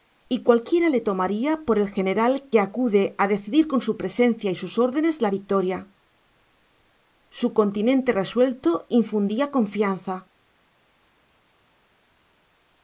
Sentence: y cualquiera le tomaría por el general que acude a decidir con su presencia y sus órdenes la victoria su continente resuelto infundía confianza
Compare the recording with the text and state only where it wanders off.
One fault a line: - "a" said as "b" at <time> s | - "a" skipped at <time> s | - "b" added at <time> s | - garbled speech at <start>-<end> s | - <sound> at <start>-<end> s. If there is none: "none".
none